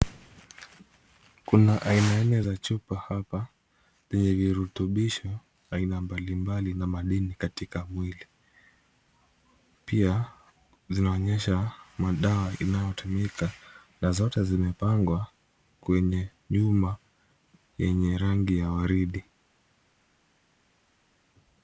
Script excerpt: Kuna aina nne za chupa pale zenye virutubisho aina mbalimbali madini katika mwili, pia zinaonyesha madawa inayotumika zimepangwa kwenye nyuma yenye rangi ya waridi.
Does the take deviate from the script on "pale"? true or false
true